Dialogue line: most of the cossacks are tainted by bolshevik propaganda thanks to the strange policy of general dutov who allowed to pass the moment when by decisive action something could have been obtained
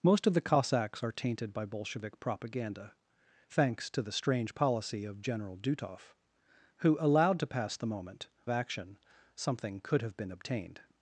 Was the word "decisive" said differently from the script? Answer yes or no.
yes